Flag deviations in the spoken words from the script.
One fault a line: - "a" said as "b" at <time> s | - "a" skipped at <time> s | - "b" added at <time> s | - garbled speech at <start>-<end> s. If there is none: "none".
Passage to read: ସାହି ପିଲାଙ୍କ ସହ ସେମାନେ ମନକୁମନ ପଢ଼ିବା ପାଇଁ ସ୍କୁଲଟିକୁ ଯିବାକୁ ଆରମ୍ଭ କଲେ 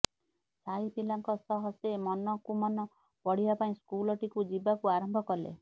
- "ସେମାନେ" said as "ସେ" at 1.8 s